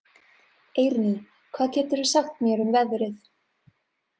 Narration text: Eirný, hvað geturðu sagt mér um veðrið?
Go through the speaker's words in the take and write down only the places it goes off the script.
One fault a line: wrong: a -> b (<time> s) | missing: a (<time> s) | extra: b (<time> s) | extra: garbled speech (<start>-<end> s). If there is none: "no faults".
no faults